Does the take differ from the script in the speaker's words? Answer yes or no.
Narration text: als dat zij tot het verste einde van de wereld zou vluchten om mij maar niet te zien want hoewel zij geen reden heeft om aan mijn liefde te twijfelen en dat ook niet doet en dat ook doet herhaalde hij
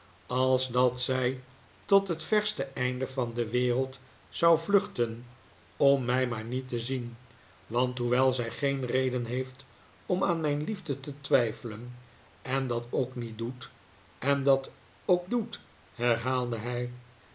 no